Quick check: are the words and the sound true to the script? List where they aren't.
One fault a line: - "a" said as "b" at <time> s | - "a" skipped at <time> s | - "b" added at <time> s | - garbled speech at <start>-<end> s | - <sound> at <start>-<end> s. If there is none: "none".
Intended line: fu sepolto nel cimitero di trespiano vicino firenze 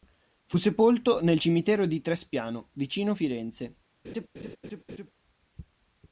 - laugh at 4.0-5.1 s